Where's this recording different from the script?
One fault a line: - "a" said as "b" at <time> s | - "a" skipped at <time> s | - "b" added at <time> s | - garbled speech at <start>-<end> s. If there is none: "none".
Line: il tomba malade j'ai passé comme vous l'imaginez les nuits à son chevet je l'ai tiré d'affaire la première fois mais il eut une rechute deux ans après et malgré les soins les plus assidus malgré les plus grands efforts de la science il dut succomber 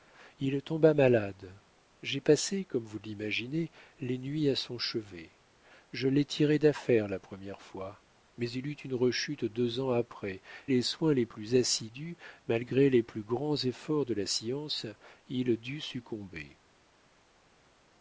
- "et malgré" skipped at 10.4 s